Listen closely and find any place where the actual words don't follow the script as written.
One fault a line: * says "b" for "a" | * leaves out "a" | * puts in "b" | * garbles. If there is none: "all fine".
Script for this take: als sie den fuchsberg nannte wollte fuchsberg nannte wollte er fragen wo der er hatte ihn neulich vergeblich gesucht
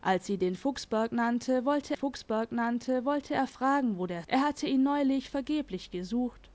all fine